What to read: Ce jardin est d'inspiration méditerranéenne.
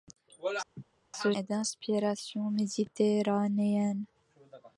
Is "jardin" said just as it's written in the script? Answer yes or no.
no